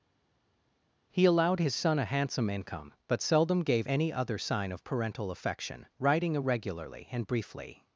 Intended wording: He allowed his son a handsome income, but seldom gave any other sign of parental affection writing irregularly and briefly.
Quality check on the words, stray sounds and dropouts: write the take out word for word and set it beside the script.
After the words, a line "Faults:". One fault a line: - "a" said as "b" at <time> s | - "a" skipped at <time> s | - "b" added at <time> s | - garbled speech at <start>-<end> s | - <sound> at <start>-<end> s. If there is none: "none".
He allowed his son a handsome income, but seldom gave any other sign of parental affection writing irregularly and briefly.
Faults:
none